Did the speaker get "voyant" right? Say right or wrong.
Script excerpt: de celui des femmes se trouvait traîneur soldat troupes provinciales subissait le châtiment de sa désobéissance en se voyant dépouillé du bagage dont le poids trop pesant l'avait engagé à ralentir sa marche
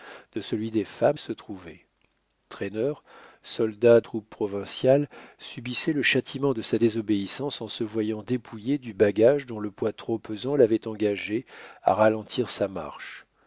right